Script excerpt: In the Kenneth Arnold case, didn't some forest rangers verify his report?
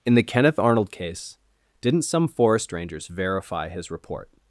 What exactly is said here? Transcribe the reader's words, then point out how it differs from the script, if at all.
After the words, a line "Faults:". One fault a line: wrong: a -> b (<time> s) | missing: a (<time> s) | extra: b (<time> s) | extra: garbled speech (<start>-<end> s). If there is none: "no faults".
In the Kenneth Arnold case, didn't some forest rangers verify his report?
Faults:
no faults